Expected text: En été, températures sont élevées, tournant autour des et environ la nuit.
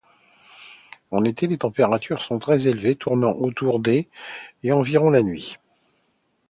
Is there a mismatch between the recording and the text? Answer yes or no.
yes